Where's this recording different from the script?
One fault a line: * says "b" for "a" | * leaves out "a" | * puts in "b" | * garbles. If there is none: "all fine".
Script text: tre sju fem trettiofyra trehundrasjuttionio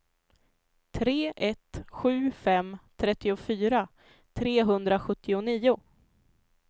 * puts in "ett"